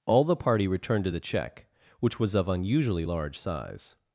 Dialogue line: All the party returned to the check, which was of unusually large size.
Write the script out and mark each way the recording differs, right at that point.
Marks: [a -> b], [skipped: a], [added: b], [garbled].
All the party returned to the check, which was of unusually large size.